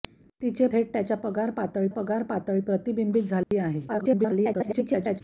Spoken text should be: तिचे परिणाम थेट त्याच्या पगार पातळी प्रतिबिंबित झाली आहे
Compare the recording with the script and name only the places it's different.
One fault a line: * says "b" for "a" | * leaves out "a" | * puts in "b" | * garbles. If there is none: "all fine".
* leaves out "परिणाम"
* puts in "पगार पातळी"
* garbles